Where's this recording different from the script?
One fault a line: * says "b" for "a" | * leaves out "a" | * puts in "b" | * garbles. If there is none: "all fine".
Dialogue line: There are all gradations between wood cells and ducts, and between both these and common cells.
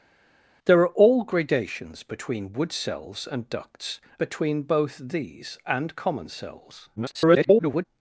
* leaves out "and"
* garbles